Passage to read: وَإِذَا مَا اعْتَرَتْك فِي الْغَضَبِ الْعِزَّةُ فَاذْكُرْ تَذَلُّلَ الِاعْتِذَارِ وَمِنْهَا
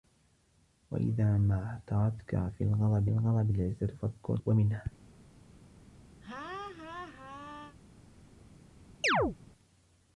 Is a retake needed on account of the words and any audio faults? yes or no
yes